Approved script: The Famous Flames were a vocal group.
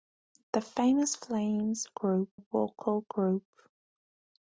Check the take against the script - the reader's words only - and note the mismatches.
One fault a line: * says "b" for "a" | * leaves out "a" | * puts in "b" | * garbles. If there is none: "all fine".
* says "group" for "were"